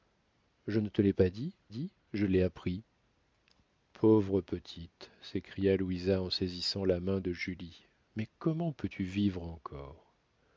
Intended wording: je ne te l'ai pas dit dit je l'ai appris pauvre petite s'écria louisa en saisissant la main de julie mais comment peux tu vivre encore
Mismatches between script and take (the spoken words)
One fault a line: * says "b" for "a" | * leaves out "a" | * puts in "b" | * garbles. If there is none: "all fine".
all fine